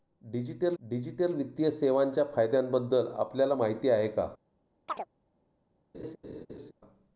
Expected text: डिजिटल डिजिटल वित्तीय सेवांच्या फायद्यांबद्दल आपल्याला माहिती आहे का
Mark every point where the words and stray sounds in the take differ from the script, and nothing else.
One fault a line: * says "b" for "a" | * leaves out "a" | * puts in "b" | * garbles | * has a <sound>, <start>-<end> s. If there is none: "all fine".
* has a chirp, 4.9-5.1 s
* has a laugh, 5.9-6.7 s